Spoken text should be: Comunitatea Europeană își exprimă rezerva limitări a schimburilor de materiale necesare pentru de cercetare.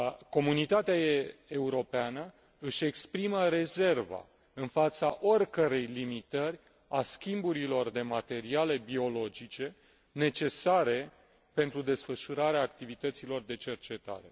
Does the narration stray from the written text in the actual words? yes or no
yes